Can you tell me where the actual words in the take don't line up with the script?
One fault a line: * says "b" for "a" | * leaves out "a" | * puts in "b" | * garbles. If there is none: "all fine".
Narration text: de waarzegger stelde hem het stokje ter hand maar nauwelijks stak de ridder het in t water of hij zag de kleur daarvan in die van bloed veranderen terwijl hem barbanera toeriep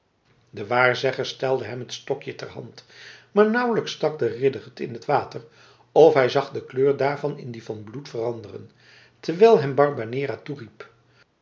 all fine